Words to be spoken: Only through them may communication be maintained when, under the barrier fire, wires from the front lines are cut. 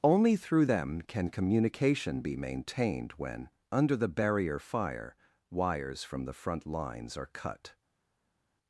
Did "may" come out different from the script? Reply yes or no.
yes